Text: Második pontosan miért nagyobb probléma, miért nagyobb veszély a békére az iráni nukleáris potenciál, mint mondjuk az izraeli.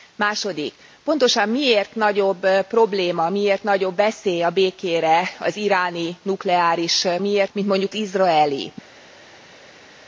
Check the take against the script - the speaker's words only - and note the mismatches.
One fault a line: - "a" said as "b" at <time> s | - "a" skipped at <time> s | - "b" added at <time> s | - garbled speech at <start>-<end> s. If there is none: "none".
- "potenciál" said as "miért" at 7.2 s
- "az" skipped at 7.9 s